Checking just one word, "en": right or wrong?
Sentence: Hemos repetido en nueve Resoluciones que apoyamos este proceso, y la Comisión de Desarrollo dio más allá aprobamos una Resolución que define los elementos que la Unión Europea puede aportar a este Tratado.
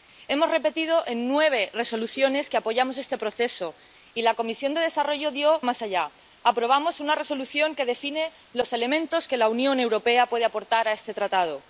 right